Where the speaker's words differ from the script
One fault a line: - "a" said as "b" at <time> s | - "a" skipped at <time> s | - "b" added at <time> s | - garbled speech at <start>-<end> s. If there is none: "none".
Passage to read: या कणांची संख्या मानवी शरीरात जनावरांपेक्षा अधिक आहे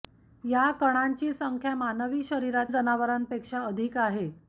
none